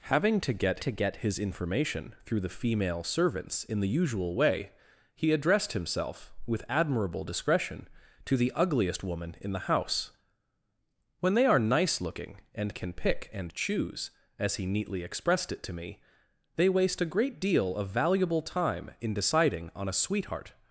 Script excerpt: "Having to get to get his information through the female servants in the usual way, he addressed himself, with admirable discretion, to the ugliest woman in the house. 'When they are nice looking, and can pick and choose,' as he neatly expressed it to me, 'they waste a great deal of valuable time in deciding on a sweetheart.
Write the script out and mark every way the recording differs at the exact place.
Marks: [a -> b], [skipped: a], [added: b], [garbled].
"Having to get to get his information through the female servants in the usual way, he addressed himself, with admirable discretion, to the ugliest woman in the house. 'When they are nice looking, and can pick and choose,' as he neatly expressed it to me, 'they waste a great deal of valuable time in deciding on a sweetheart.